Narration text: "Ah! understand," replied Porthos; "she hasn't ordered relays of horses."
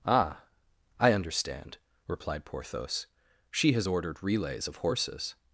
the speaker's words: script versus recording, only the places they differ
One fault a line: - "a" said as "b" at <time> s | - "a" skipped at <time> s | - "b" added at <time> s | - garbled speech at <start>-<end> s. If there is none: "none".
- "I" added at 1.0 s
- "hasn't" said as "has" at 3.7 s